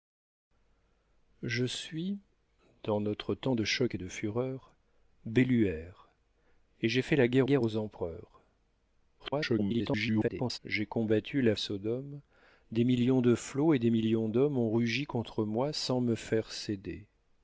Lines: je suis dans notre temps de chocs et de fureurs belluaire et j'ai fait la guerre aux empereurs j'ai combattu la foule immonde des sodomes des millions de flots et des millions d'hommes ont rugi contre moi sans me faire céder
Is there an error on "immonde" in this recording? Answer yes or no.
yes